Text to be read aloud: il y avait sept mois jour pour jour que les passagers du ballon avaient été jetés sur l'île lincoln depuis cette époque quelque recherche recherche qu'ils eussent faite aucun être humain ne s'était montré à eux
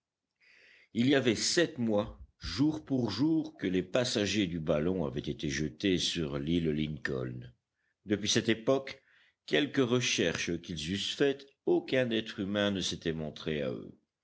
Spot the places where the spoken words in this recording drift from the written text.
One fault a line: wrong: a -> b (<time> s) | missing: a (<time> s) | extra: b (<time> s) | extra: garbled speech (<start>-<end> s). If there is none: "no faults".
missing: recherche (10.6 s)